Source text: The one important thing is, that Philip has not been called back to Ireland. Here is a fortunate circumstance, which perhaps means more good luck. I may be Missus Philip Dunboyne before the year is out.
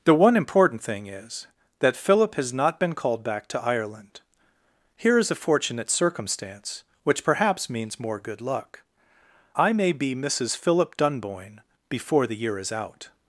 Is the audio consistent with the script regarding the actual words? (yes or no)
yes